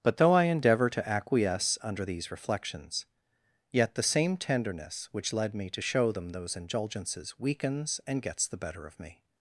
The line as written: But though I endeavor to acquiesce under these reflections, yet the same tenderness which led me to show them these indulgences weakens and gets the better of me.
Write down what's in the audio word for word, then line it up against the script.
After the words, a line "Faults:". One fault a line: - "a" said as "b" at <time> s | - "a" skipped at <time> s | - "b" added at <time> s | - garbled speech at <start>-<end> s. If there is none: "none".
But though I endeavor to acquiesce under these reflections, yet the same tenderness which led me to show them those indulgences weakens and gets the better of me.
Faults:
- "these" said as "those" at 6.3 s